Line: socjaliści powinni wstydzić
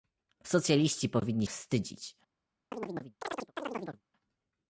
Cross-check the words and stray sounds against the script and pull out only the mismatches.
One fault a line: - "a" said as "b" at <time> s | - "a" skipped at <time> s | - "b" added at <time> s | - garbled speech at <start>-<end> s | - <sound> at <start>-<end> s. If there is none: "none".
- chirp at 2.7-4.0 s